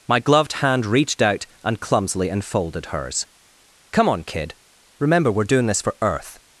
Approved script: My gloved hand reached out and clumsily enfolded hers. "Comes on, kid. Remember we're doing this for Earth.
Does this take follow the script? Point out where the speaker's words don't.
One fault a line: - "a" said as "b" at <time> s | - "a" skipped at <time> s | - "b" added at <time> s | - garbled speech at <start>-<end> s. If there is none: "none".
- "Comes" said as "Come" at 3.9 s